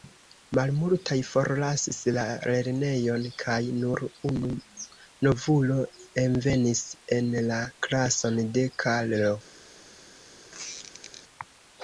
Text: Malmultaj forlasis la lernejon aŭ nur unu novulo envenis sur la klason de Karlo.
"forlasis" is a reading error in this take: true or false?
false